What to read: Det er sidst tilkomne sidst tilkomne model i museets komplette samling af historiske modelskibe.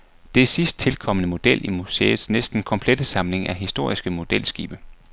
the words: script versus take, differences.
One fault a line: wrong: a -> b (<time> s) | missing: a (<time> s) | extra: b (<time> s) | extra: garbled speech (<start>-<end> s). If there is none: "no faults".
missing: sidst tilkomne (1.3 s)
extra: næsten (2.3 s)